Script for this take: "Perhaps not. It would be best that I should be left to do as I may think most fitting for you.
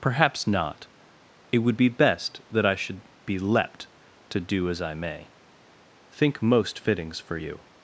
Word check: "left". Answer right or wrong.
wrong